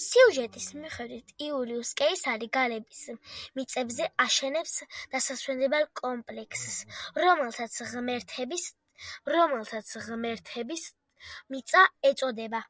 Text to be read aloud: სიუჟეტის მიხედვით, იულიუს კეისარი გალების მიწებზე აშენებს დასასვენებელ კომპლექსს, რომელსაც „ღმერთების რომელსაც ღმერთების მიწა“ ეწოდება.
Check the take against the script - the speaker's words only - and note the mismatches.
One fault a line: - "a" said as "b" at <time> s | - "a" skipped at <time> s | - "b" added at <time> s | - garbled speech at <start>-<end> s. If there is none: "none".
none